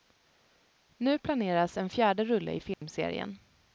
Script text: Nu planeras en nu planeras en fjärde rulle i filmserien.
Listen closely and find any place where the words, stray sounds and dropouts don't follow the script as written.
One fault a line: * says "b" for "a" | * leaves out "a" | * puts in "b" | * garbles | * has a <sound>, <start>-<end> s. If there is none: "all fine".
* leaves out "nu planeras en"
* has a dropout, 2.7-2.8 s